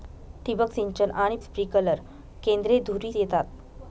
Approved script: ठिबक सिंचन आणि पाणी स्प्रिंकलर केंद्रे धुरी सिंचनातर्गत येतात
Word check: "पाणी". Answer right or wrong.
wrong